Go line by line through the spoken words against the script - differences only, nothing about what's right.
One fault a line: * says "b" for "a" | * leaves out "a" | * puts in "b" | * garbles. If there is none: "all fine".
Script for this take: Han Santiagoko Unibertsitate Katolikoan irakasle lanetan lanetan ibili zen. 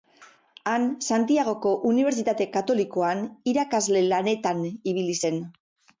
* leaves out "lanetan"